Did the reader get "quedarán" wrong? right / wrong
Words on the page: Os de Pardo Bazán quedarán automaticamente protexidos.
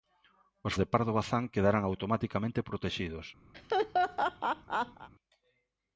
right